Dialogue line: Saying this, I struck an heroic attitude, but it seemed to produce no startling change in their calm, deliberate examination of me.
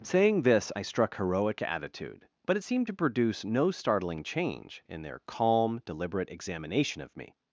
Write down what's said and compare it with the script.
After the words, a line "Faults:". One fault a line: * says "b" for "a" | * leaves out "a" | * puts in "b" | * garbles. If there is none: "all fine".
Saying this, I struck heroic attitude, but it seemed to produce no startling change in their calm, deliberate examination of me.
Faults:
* leaves out "an"